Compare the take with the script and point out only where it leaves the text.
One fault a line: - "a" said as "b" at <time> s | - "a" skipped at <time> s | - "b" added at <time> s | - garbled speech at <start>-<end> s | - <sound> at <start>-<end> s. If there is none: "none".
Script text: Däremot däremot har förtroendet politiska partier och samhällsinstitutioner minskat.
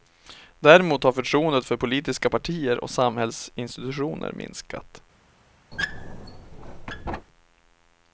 - "däremot" skipped at 1.0 s
- "för" added at 1.6 s
- squeak at 5.7-7.3 s